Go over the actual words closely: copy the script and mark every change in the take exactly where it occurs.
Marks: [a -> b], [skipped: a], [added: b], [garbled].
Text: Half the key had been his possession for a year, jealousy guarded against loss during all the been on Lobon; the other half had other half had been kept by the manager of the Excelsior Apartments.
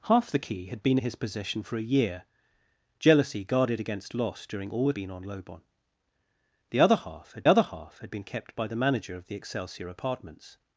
Half the key had been his possession for a year, jealousy guarded against loss during all the been on Lobon; the other half had other half had been kept by the manager of the Excelsior Apartments.